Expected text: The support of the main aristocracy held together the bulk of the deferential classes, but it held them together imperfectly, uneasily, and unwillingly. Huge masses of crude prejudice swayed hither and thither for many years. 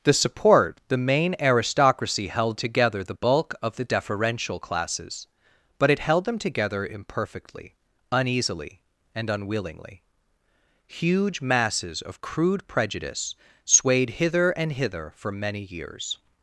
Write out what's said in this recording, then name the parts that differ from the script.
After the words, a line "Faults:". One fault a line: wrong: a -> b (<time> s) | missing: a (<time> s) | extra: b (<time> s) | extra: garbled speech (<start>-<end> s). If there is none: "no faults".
The support the main aristocracy held together the bulk of the deferential classes, but it held them together imperfectly, uneasily, and unwillingly. Huge masses of crude prejudice swayed hither and hither for many years.
Faults:
missing: of (0.8 s)
wrong: thither -> hither (14.7 s)